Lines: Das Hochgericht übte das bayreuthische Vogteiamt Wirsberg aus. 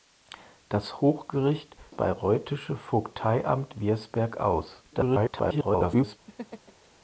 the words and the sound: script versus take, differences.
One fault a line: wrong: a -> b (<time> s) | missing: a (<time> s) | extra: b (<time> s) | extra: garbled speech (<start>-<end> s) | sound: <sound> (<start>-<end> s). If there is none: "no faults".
missing: übte das (1.8 s)
extra: garbled speech (4.9-6.2 s)
sound: laugh (6.3-6.9 s)